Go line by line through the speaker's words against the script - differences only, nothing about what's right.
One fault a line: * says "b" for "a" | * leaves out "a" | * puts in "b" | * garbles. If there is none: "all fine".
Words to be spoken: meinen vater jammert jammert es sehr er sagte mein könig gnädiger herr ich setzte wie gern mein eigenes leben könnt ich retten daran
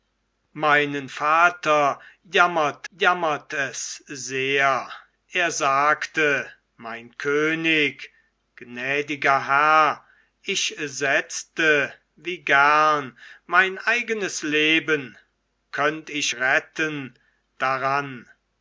all fine